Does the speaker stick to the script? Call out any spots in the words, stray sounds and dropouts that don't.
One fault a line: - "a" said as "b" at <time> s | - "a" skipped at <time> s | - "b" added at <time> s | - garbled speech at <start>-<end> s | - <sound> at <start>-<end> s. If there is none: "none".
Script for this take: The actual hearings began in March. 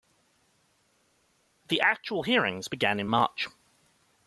none